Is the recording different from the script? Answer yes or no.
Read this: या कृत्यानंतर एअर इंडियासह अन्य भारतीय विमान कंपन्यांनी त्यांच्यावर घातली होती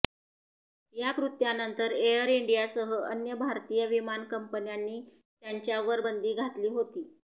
yes